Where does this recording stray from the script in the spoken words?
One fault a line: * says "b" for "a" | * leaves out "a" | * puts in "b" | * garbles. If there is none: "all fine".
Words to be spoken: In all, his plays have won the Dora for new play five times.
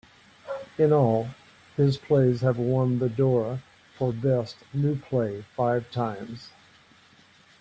* puts in "best"